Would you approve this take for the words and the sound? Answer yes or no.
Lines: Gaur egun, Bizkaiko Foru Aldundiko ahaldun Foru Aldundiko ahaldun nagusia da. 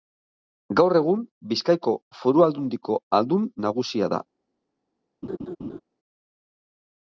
no